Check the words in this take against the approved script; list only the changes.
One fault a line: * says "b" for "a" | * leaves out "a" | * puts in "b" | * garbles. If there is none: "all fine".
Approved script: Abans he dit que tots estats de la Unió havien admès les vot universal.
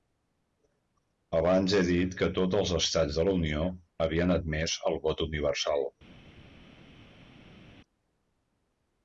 * puts in "els"
* says "el" for "les"